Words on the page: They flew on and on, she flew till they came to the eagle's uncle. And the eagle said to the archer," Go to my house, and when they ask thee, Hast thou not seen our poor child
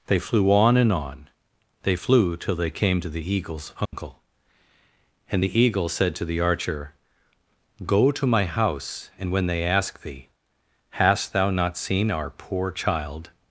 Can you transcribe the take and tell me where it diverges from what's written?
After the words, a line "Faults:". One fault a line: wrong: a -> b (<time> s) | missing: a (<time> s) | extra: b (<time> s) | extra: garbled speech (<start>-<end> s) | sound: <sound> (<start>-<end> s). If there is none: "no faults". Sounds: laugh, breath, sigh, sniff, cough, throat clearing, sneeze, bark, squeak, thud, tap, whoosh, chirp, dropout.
They flew on and on, they flew till they came to the eagle's uncle. And the eagle said to the archer," Go to my house, and when they ask thee, Hast thou not seen our poor child
Faults:
wrong: she -> they (1.8 s)
sound: dropout (3.9-3.9 s)